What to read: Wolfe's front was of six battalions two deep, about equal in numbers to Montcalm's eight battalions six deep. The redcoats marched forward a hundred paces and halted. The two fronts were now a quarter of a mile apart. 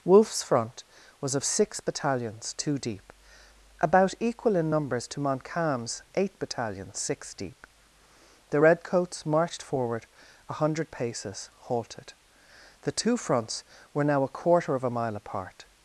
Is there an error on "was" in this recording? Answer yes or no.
no